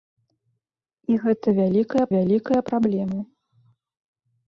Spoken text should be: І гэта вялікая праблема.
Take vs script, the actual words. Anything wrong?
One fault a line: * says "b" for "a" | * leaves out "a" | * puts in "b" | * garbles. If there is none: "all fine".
* puts in "вялікая"